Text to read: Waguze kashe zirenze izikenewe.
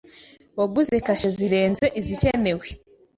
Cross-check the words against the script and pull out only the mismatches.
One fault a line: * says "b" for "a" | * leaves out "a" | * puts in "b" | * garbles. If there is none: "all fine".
all fine